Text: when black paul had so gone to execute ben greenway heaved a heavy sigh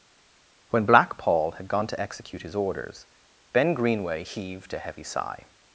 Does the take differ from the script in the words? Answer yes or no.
yes